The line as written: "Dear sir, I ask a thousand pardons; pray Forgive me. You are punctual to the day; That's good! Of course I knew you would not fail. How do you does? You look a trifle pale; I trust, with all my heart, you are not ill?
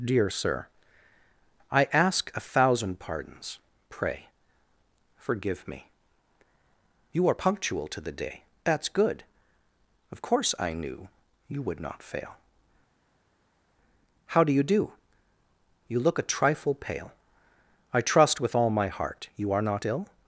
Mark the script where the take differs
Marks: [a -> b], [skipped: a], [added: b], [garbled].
"Dear sir, I ask a thousand pardons; pray Forgive me. You are punctual to the day; That's good! Of course I knew you would not fail. How do you [does? -> do] You look a trifle pale; I trust, with all my heart, you are not ill?